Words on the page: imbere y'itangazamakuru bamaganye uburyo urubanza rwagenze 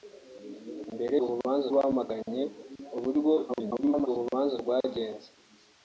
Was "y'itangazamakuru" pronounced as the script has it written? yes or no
no